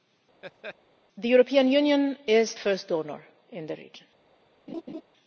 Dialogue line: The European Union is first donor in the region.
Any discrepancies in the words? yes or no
no